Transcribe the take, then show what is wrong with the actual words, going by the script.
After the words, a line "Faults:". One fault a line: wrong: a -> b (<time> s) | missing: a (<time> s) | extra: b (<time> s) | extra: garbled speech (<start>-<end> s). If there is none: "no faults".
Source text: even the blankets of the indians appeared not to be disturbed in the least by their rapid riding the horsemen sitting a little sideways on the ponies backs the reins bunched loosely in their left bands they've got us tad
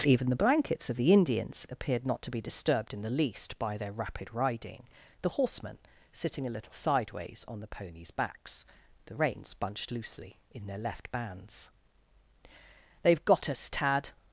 even the blankets of the indians appeared not to be disturbed in the least by their rapid riding the horsemen sitting a little sideways on the ponies backs the reins bunched loosely in their left bands they've got us tad
Faults:
no faults